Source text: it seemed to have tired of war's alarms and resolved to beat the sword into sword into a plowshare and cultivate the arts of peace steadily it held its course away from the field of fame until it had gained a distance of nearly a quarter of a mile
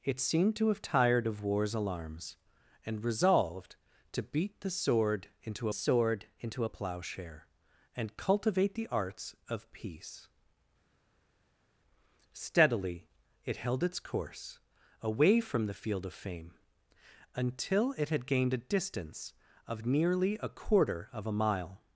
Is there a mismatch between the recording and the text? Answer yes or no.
no